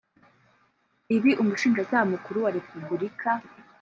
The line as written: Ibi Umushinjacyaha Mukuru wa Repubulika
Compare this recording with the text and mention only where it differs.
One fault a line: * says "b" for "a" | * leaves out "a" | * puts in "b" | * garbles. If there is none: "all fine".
all fine